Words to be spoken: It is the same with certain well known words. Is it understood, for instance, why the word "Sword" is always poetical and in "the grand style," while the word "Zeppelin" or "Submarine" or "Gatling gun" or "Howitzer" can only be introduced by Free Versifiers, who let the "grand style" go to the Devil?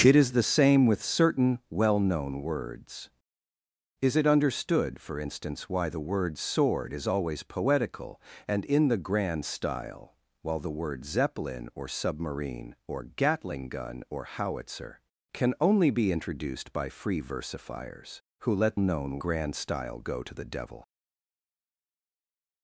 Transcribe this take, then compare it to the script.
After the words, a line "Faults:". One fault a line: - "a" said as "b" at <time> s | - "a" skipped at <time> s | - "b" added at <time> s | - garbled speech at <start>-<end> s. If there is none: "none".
It is the same with certain well known words. Is it understood, for instance, why the word "Sword" is always poetical and in "the grand style," while the word "Zeppelin" or "Submarine" or "Gatling gun" or "Howitzer" can only be introduced by Free Versifiers, who let known "grand style" go to the Devil?
Faults:
- "the" said as "known" at 18.8 s